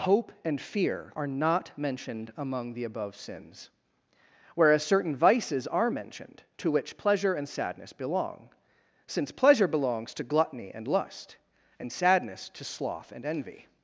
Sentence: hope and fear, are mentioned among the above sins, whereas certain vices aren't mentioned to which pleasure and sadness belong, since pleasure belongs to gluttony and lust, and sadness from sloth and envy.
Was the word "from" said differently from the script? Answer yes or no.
yes